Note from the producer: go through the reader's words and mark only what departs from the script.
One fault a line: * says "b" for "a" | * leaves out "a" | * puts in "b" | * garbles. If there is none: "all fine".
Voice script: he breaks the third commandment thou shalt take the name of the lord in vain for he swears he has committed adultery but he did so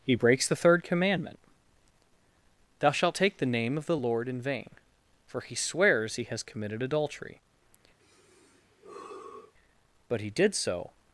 all fine